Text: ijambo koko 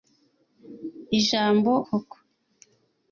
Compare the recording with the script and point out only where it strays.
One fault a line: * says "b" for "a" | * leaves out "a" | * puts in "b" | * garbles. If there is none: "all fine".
all fine